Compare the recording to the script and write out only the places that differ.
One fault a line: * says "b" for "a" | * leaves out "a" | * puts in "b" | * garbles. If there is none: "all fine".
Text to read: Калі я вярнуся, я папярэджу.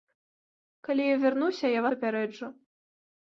all fine